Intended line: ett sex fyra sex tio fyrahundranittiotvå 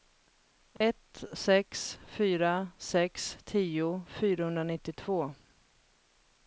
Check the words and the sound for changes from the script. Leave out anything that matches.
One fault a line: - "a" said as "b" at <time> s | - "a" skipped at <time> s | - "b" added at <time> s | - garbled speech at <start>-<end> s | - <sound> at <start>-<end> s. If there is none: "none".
- dropout at 0.8-0.8 s